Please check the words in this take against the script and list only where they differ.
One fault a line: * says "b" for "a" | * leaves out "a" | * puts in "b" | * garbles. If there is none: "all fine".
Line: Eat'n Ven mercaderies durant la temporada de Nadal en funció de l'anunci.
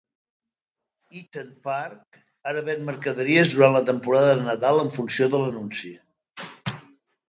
* puts in "Park ara"